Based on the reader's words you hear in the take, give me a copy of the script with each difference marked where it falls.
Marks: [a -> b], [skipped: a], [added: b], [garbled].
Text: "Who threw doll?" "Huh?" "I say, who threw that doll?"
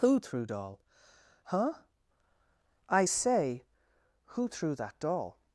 "Who threw doll?" "Huh?" "I say, who threw that doll?"